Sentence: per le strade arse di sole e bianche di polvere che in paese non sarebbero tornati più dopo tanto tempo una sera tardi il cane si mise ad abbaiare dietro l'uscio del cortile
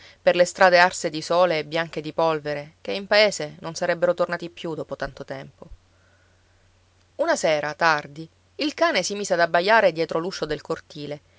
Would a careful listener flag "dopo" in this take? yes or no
no